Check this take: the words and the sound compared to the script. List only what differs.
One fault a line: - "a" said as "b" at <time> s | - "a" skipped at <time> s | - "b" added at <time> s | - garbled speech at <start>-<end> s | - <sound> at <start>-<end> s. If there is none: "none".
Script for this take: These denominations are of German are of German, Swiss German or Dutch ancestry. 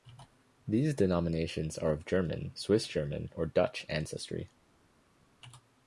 - "are of German" skipped at 2.5 s